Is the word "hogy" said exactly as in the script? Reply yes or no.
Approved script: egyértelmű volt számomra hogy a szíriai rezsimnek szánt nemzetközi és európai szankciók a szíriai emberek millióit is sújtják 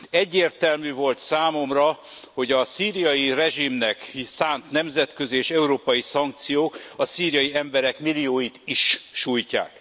yes